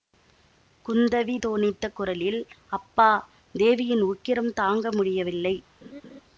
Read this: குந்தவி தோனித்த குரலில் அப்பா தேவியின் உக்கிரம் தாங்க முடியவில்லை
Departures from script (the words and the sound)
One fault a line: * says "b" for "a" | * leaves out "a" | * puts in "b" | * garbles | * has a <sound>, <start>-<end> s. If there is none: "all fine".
* has a laugh, 5.8-6.2 s